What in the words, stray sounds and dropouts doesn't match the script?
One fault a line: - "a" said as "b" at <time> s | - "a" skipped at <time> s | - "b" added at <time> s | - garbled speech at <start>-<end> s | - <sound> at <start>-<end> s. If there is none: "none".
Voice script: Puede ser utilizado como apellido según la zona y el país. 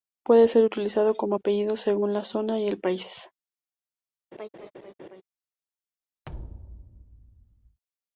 - laugh at 4.3-5.2 s
- thud at 6.2-7.8 s